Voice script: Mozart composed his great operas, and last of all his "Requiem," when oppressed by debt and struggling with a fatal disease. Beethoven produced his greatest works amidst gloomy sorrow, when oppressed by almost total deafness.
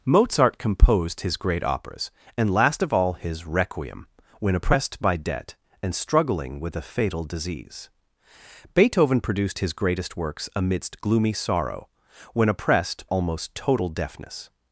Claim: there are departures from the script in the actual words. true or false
true